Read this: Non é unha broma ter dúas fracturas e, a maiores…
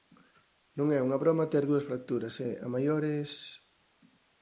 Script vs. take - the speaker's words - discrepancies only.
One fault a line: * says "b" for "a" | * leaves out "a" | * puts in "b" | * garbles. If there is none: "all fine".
all fine